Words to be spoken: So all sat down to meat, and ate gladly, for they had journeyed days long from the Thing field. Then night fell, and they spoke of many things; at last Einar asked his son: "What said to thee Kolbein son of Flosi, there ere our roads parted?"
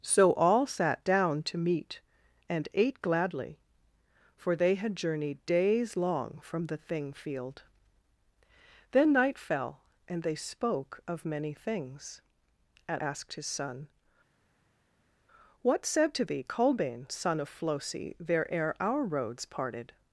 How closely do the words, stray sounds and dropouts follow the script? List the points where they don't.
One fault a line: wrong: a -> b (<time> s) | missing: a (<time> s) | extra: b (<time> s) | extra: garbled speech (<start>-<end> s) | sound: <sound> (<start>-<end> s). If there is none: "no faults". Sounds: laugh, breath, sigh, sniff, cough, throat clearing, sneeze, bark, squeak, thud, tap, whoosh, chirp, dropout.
missing: last Einar (13.0 s)